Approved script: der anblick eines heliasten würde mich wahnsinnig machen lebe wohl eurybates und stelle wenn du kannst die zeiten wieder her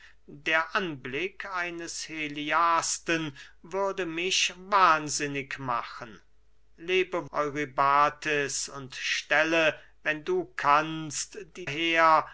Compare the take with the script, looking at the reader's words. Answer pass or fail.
fail